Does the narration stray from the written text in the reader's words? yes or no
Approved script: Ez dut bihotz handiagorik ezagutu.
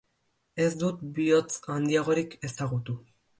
no